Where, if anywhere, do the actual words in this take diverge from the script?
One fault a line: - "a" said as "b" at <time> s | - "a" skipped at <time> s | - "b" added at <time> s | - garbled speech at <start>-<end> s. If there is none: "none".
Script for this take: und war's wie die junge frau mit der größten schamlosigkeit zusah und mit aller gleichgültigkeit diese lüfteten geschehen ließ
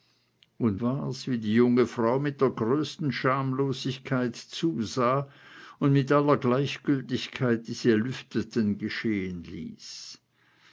none